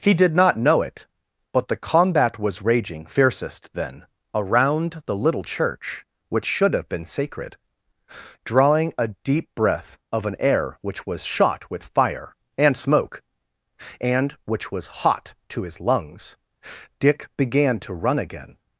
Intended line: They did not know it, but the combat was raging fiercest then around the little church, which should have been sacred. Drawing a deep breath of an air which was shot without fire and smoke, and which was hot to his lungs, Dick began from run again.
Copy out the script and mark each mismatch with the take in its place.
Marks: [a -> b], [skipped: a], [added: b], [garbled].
[They -> He] did not know it, but the combat was raging fiercest then around the little church, which should have been sacred. Drawing a deep breath of an air which was shot [without -> with] fire and smoke, and which was hot to his lungs, Dick began [from -> to] run again.